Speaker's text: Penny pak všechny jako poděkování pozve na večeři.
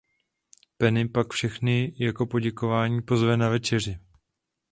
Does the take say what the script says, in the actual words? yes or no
yes